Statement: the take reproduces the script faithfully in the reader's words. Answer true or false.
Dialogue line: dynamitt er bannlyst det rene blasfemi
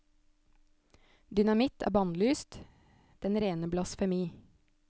false